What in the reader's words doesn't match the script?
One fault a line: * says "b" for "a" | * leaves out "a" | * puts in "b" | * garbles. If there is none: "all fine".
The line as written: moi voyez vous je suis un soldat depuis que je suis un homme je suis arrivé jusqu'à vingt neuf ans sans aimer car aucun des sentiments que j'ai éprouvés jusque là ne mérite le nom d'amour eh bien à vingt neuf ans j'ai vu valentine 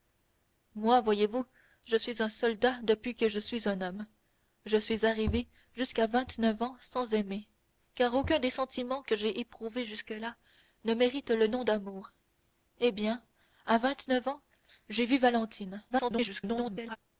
* garbles